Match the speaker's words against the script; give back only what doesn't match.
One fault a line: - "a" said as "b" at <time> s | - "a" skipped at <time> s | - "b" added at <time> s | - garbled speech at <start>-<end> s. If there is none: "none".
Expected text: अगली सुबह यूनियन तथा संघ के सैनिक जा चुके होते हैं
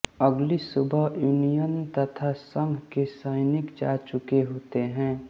none